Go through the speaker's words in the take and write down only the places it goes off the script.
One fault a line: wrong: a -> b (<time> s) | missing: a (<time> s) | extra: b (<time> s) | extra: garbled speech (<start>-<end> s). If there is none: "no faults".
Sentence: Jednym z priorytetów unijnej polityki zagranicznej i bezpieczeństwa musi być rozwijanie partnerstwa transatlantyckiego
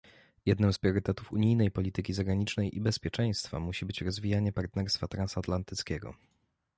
no faults